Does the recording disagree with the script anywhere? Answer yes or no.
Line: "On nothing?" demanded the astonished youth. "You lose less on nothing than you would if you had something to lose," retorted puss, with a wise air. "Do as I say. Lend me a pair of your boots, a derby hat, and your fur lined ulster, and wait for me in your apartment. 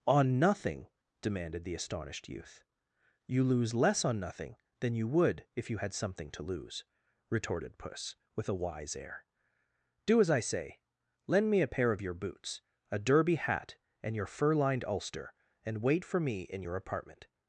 no